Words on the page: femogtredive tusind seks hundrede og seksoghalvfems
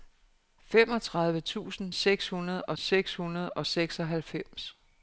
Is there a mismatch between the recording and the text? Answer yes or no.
yes